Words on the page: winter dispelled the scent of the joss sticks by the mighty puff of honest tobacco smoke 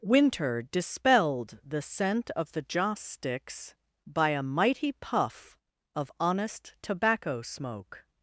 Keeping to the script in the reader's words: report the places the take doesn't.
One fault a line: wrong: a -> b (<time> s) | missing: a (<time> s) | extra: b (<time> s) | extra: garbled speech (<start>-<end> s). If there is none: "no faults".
wrong: the -> a (4.3 s)